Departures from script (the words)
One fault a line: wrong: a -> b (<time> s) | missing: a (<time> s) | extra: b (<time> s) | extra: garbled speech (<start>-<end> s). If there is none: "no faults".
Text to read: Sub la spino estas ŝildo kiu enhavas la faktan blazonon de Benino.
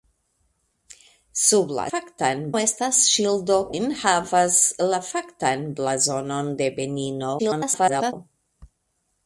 wrong: spino -> faktan (1.9 s)
missing: kiu (3.6 s)
extra: garbled speech (7.4-8.1 s)